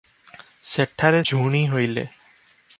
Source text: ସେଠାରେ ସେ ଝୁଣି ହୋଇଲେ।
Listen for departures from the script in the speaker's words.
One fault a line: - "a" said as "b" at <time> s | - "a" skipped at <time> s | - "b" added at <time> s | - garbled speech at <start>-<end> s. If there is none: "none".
- "ସେ" skipped at 1.2 s